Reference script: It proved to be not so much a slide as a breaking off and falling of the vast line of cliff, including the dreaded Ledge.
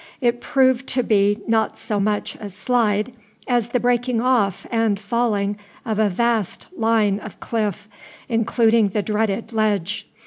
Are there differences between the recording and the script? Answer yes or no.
yes